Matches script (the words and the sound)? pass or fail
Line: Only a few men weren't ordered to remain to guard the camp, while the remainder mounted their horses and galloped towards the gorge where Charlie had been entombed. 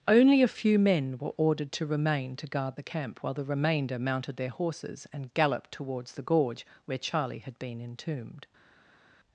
fail